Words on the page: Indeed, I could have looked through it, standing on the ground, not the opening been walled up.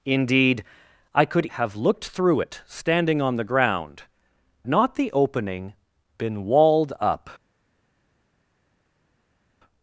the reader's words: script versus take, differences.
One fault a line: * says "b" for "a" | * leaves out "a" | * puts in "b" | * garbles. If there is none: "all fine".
all fine